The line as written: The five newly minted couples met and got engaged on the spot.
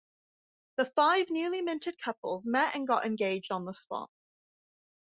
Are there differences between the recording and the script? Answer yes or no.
no